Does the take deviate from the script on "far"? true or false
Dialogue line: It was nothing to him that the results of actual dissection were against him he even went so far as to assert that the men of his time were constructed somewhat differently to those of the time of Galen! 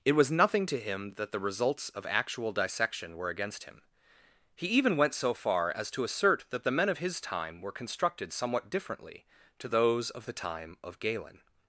false